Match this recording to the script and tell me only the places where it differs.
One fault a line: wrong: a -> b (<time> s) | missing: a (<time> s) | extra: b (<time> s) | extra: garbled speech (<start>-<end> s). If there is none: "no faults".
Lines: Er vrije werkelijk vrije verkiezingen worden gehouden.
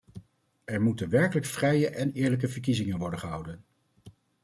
wrong: vrije -> moeten (0.8 s)
extra: en eerlijke (1.9 s)